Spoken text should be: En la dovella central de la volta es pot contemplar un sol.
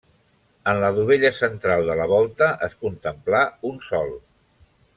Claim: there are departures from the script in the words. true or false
true